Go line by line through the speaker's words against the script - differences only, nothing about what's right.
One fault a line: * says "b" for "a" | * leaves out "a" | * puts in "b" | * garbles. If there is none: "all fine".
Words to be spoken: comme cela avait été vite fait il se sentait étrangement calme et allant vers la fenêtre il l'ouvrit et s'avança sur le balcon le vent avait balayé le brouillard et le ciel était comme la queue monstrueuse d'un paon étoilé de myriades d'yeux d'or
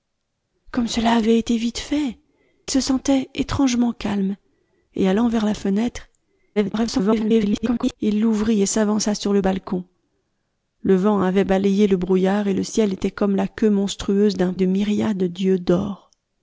* leaves out "il"
* garbles
* leaves out "paon étoilé"